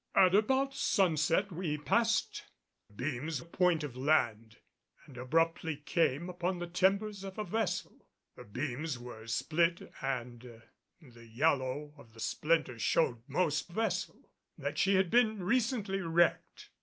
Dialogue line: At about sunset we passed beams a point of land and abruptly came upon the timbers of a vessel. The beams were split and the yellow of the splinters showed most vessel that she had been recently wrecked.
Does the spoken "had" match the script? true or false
true